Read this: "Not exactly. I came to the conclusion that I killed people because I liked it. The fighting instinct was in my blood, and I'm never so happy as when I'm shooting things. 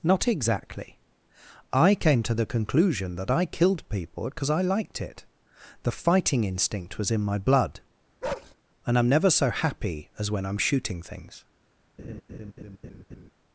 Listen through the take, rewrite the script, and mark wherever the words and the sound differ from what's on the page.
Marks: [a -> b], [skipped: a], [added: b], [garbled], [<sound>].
"Not exactly. I came to the conclusion that I killed people because I liked it. The fighting instinct was in my blood, [bark] and I'm never so happy as when I'm shooting things. [laugh]